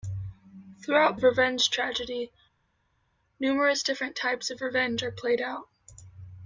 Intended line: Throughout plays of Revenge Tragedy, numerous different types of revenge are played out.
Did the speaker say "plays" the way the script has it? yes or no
no